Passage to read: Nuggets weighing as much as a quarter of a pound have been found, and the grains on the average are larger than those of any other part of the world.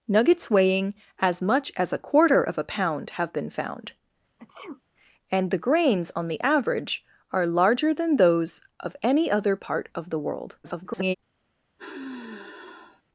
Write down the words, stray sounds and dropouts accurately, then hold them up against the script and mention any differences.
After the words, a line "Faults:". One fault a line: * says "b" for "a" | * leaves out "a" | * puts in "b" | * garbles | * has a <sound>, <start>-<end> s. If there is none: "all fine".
Nuggets weighing as much as a quarter of a pound have been found, and the grains on the average are larger than those of any other part of the world. [garbled]
Faults:
* has a sneeze, 4.4-4.8 s
* garbles
* has a sigh, 11.8-13.0 s